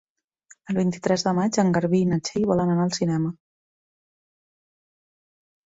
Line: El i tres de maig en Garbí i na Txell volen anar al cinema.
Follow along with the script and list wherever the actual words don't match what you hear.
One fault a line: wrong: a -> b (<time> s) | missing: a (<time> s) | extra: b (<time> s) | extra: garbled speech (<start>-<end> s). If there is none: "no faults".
extra: vint (0.8 s)